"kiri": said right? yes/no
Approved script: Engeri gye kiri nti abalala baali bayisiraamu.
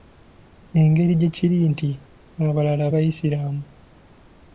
yes